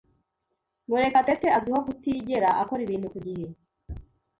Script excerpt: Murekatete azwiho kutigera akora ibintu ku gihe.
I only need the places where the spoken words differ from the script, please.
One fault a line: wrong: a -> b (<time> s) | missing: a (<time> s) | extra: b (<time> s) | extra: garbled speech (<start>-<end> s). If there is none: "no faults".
no faults